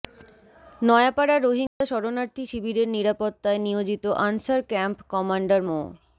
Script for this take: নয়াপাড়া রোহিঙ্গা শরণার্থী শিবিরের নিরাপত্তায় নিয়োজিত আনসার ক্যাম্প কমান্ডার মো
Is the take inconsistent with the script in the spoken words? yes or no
no